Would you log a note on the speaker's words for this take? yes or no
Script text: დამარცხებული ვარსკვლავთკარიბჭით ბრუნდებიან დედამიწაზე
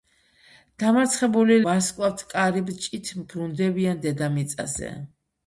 no